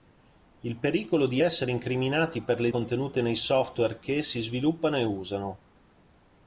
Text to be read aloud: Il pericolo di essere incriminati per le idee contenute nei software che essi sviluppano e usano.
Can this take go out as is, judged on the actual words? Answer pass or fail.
fail